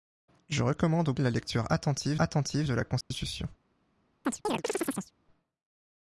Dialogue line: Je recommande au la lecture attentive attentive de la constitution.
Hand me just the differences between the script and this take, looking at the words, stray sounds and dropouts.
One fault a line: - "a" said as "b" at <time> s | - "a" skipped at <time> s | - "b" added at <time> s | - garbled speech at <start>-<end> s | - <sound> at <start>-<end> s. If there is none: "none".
- dropout at 3.0-3.1 s
- chirp at 4.2-5.1 s